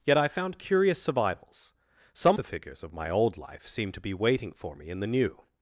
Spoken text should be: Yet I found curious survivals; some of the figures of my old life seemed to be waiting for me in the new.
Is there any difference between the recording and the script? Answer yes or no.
yes